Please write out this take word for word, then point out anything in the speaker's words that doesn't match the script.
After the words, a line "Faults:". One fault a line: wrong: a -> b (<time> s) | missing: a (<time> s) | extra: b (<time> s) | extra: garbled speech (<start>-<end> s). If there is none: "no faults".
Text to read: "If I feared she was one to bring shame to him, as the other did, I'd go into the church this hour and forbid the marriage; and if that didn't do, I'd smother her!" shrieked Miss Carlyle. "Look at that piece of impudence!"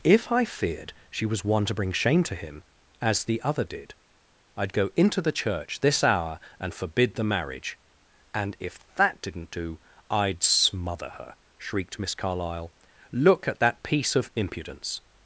"If I feared she was one to bring shame to him, as the other did, I'd go into the church this hour and forbid the marriage; and if that didn't do, I'd smother her!" shrieked Miss Carlyle. "Look at that piece of impudence!"
Faults:
no faults